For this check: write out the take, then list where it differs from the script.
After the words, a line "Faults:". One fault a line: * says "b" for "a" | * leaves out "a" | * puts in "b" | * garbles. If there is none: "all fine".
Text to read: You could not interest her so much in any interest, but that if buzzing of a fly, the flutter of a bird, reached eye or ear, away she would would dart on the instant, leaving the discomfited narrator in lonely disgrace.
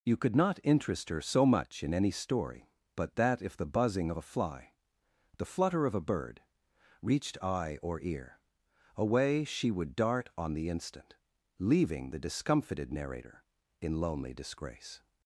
You could not interest her so much in any story, but that if the buzzing of a fly, the flutter of a bird, reached eye or ear, away she would dart on the instant, leaving the discomfited narrator in lonely disgrace.
Faults:
* says "story" for "interest"
* puts in "the"
* leaves out "would"